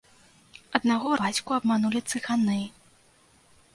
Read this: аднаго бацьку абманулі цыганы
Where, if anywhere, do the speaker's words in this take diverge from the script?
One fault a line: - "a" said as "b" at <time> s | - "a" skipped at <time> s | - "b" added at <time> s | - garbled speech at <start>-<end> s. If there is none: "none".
none